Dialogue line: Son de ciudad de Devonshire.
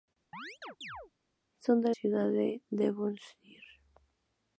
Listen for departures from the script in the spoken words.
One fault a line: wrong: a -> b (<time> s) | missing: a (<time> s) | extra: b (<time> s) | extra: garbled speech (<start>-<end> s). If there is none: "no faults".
no faults